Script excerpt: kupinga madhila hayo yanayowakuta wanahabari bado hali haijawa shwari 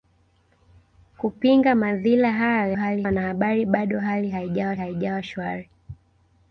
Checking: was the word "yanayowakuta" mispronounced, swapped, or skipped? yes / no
yes